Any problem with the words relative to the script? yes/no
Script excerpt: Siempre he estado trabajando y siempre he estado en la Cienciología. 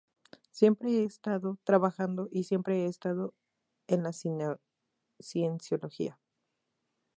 no